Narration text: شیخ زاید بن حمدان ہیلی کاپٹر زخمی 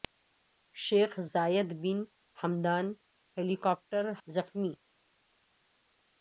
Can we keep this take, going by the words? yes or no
yes